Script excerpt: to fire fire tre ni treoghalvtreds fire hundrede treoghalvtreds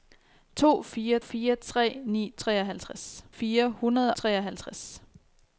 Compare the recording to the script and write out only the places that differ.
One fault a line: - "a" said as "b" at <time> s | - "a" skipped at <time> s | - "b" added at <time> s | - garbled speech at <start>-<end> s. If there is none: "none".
none